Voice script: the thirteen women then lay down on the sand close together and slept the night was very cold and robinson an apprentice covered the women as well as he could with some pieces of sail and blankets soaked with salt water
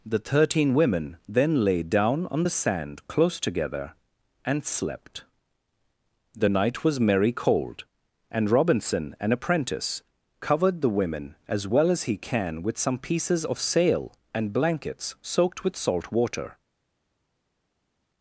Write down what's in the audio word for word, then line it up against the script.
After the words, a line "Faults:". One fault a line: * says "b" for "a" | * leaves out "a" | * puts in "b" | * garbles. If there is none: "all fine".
the thirteen women then lay down on the sand close together and slept the night was merry cold and robinson an apprentice covered the women as well as he can with some pieces of sail and blankets soaked with salt water
Faults:
* says "merry" for "very"
* says "can" for "could"